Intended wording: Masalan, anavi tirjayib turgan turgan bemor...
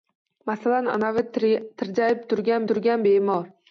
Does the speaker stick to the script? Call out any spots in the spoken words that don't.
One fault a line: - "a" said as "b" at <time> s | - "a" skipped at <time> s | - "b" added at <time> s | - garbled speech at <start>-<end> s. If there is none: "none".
none